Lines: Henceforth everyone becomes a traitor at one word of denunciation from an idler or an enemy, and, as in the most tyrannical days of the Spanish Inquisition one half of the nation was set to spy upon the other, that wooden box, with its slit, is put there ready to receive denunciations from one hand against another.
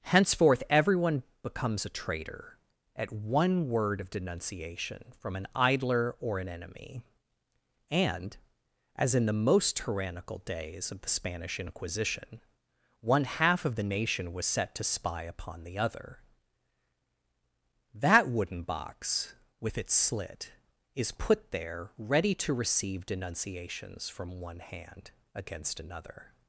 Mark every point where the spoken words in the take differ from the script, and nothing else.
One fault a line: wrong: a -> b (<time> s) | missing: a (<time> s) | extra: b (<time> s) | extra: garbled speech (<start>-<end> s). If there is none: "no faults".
no faults